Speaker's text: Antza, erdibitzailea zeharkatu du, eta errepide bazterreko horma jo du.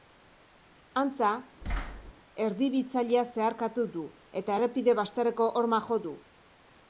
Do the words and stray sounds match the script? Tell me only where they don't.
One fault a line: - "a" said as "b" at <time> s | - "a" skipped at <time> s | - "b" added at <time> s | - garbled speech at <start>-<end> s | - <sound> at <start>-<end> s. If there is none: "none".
- thud at 1.6-2.1 s